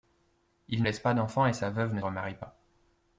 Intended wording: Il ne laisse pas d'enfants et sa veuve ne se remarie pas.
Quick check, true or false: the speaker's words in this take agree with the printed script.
false